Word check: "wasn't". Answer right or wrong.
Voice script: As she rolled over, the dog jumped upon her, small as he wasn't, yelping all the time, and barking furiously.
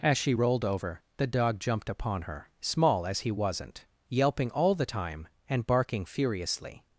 right